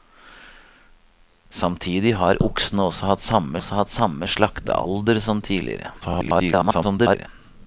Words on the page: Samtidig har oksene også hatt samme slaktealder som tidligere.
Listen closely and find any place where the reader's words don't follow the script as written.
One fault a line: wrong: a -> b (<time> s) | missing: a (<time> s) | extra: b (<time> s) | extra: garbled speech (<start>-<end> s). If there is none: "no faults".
extra: også hatt samme (3.6 s)
extra: garbled speech (6.0-7.3 s)